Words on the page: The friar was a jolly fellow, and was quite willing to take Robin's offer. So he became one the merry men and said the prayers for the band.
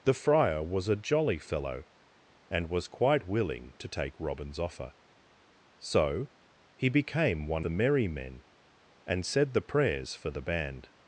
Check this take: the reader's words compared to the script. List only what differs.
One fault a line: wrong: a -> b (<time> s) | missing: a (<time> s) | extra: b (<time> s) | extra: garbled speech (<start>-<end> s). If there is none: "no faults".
no faults